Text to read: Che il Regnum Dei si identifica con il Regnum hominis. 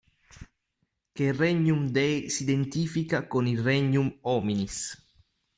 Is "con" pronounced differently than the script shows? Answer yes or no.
no